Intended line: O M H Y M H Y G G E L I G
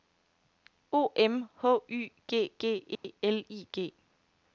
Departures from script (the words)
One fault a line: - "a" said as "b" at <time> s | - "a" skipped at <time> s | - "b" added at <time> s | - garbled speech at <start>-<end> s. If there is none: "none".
- "M H Y" skipped at 2.1 s